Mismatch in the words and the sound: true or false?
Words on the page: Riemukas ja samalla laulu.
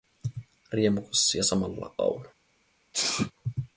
true